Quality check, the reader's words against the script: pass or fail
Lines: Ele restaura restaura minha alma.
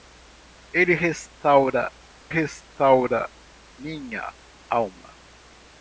pass